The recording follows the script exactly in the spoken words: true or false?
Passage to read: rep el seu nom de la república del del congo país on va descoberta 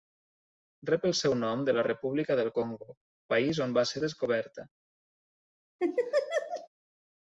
false